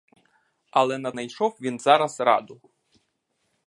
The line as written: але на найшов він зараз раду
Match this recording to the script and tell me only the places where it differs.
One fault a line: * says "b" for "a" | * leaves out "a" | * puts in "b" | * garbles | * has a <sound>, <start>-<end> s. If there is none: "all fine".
all fine